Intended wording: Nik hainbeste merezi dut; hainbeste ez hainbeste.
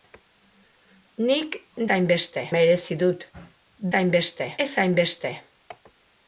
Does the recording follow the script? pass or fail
pass